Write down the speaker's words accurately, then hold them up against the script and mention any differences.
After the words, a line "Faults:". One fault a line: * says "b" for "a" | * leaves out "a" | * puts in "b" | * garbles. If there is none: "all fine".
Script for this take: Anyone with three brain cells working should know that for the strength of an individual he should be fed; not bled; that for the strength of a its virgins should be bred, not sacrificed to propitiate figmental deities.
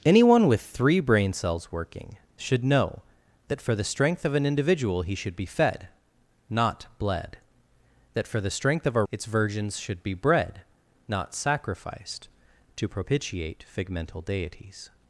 Anyone with three brain cells working should know that for the strength of an individual he should be fed; not bled; that for the strength of a its virgins should be bred, not sacrificed to propitiate figmental deities.
Faults:
all fine